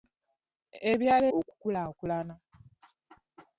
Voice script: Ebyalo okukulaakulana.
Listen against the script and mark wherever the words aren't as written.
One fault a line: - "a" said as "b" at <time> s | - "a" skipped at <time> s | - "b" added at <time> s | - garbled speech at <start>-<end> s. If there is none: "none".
none